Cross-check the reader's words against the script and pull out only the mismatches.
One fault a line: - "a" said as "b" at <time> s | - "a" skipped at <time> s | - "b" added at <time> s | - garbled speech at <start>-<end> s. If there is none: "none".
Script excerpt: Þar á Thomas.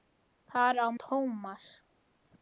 none